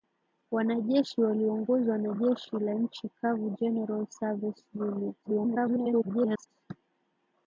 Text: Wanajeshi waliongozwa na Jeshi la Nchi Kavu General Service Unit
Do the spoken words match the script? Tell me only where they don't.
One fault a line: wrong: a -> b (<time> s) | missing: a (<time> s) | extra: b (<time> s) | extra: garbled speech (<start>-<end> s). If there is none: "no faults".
extra: garbled speech (5.2-6.5 s)